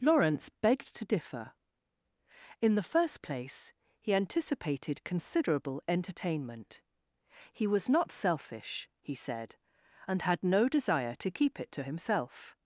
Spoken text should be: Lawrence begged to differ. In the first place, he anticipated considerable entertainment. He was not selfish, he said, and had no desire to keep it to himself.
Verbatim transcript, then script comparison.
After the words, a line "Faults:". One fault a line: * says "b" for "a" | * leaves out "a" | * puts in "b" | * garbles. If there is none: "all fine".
Lawrence begged to differ. In the first place, he anticipated considerable entertainment. He was not selfish, he said, and had no desire to keep it to himself.
Faults:
all fine